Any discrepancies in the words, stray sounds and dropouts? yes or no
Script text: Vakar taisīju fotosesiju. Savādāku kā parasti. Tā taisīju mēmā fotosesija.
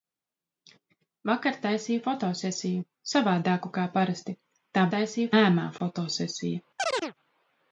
yes